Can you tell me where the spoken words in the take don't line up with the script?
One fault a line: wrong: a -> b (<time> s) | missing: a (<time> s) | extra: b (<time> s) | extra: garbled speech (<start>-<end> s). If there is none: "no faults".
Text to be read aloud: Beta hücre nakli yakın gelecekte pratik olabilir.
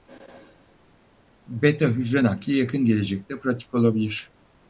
no faults